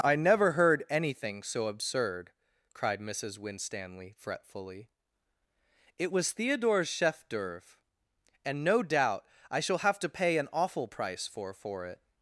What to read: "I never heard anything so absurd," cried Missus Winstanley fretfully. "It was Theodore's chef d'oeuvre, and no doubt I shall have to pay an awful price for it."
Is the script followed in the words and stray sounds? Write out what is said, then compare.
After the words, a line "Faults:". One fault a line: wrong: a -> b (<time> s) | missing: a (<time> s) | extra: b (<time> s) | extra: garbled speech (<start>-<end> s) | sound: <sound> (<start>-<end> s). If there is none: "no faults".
"I never heard anything so absurd," cried Missus Winstanley fretfully. "It was Theodore's chef d'oeuvre, and no doubt I shall have to pay an awful price for for it."
Faults:
extra: for (11.5 s)